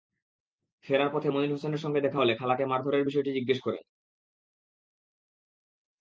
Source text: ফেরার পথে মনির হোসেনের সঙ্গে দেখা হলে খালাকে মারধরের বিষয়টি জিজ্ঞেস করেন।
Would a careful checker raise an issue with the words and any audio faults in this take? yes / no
no